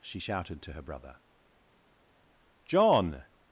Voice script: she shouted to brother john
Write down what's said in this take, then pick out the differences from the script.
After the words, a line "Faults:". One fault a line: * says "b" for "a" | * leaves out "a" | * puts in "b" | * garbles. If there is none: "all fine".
she shouted to her brother john
Faults:
* puts in "her"